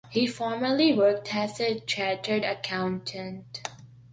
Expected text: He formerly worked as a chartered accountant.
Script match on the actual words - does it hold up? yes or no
yes